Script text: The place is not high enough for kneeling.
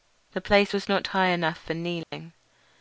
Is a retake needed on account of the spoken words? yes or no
yes